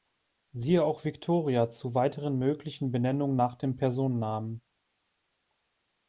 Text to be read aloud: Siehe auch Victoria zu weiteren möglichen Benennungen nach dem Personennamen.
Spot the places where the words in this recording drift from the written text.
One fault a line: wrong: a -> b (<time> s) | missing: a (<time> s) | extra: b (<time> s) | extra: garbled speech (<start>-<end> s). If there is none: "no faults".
no faults